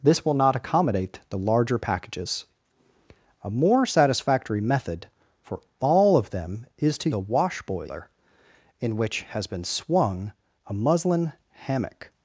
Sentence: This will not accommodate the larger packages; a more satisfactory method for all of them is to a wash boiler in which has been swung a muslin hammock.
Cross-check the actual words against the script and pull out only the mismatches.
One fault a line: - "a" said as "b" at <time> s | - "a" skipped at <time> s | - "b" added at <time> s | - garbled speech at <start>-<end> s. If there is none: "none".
none